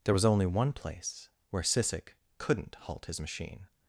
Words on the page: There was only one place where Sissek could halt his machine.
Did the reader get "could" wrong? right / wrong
wrong